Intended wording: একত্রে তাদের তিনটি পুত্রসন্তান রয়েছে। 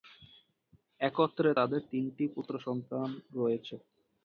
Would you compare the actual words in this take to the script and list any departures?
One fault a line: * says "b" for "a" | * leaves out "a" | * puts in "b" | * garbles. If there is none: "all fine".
all fine